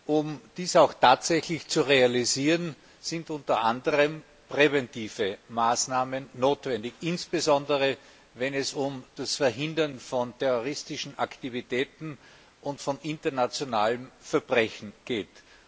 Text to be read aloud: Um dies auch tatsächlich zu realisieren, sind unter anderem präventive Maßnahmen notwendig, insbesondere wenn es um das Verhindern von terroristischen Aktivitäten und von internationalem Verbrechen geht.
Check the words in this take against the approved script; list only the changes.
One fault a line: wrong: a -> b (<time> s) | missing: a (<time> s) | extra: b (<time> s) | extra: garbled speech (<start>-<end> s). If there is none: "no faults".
no faults